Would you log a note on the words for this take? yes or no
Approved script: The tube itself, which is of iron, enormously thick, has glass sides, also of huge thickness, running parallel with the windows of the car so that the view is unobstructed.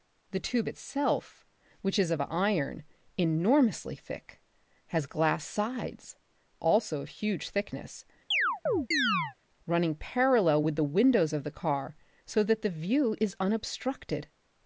no